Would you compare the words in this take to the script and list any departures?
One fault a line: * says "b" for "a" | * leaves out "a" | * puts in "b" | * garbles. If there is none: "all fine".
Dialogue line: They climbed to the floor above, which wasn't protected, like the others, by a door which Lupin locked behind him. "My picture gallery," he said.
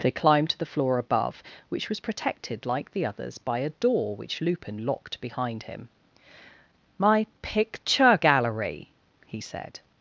* says "was" for "wasn't"